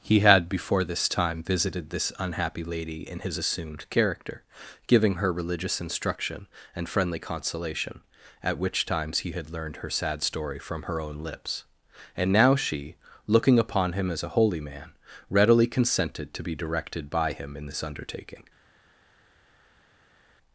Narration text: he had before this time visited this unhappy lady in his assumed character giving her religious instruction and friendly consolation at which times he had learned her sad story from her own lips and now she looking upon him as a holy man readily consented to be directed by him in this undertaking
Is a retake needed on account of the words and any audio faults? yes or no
no